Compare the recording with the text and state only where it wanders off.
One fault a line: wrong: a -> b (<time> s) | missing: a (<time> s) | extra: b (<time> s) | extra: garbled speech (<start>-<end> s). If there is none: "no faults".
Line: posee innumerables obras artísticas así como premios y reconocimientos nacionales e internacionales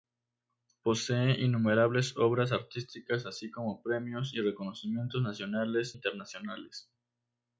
missing: e (6.0 s)